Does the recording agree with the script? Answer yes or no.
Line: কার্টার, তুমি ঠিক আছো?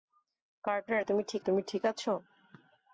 no